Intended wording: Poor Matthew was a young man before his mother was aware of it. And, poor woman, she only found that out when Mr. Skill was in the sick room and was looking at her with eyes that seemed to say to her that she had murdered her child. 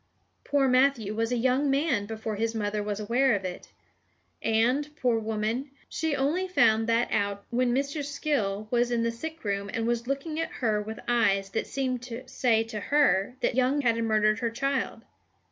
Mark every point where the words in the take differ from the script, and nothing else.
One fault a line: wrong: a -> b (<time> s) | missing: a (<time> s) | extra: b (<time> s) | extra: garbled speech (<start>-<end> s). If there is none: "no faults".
wrong: she -> young (13.5 s)